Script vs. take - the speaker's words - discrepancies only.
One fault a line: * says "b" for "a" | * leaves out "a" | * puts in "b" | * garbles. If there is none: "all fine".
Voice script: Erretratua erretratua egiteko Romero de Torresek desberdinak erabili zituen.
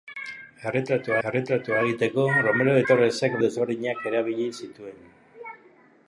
all fine